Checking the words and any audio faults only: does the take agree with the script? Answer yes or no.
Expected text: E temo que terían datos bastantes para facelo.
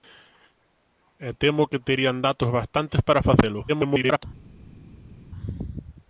no